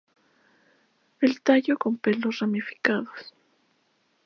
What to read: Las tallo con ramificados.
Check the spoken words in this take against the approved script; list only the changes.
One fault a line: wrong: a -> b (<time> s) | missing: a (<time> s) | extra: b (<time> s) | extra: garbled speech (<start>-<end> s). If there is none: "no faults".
wrong: Las -> El (1.2 s)
extra: pelos (2.0 s)